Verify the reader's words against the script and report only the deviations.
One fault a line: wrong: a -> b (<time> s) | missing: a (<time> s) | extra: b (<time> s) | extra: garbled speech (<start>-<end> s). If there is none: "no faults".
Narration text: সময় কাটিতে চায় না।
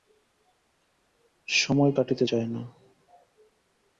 no faults